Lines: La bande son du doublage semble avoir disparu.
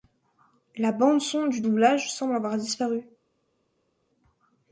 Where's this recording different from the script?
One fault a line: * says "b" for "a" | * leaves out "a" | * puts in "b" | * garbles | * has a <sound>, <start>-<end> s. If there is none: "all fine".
all fine